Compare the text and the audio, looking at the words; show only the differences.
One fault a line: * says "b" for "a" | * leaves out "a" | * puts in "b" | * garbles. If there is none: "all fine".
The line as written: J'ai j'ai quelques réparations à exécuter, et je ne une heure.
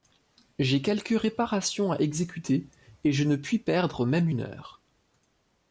* leaves out "j'ai"
* puts in "puis perdre même"